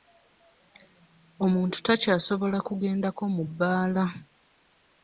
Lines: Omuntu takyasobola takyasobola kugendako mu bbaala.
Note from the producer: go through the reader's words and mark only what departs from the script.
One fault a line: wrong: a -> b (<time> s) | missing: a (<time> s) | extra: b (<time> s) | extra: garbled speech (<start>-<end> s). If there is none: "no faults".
missing: takyasobola (2.6 s)